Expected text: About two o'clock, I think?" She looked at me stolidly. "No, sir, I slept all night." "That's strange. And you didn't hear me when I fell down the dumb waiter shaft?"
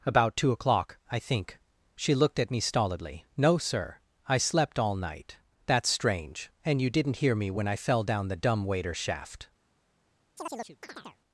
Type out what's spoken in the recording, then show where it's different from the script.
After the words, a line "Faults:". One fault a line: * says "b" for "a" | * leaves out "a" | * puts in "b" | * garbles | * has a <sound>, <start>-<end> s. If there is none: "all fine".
About two o'clock, I think?" She looked at me stolidly. "No, sir, I slept all night." "That's strange. And you didn't hear me when I fell down the dumb waiter shaft?"
Faults:
* has a chirp, 10.4-11.2 s